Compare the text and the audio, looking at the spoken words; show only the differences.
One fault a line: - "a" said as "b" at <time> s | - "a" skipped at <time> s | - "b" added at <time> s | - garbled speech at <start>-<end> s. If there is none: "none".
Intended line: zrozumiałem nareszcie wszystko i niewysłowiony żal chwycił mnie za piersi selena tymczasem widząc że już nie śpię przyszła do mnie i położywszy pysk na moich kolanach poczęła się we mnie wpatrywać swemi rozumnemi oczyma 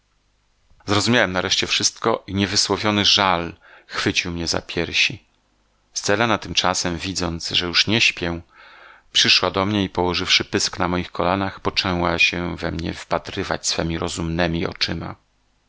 none